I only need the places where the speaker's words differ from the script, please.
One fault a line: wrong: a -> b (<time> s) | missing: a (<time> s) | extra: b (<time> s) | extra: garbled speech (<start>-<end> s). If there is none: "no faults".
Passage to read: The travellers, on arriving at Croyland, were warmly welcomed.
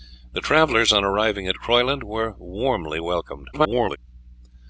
extra: garbled speech (3.5-4.0 s)